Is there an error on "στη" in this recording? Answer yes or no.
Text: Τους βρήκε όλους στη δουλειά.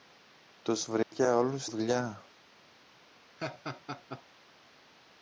yes